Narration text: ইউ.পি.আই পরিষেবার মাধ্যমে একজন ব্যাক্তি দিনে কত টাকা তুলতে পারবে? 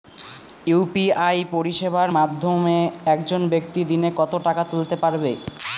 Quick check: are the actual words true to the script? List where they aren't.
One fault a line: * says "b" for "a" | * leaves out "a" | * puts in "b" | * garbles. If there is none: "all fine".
all fine